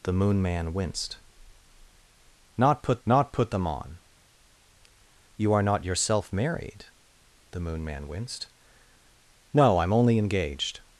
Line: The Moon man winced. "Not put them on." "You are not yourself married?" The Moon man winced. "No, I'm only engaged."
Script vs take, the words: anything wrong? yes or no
yes